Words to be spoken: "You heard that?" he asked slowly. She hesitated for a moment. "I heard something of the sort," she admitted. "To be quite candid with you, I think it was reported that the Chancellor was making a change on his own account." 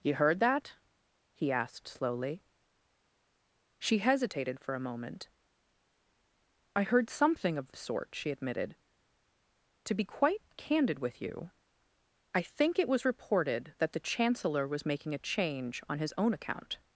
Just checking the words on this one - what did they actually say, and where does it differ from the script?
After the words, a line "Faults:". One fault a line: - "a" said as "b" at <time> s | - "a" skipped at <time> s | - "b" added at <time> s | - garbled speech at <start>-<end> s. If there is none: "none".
"You heard that?" he asked slowly. She hesitated for a moment. "I heard something of the sort," she admitted. "To be quite candid with you, I think it was reported that the Chancellor was making a change on his own account."
Faults:
none